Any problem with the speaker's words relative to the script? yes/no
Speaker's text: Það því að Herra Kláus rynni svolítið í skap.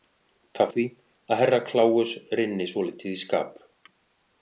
no